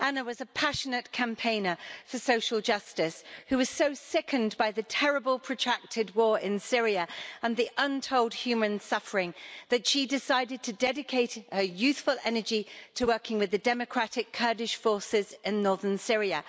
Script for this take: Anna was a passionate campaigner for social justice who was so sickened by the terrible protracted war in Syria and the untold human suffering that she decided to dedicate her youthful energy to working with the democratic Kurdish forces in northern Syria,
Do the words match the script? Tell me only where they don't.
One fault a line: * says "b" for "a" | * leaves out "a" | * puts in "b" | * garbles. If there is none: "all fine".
all fine